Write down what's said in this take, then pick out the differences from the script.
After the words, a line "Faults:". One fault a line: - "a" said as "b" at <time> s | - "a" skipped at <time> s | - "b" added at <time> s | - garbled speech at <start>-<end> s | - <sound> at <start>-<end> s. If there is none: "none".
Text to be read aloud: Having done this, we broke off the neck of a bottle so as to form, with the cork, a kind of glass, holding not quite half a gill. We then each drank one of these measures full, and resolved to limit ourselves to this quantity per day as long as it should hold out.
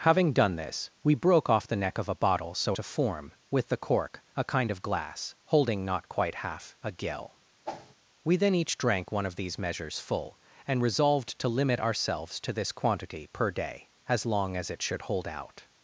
Having done this, we broke off the neck of a bottle so to form, with the cork, a kind of glass, holding not quite half a gill. We then each drank one of these measures full, and resolved to limit ourselves to this quantity per day as long as it should hold out.
Faults:
- "as" skipped at 2.8 s
- whoosh at 7.7-7.9 s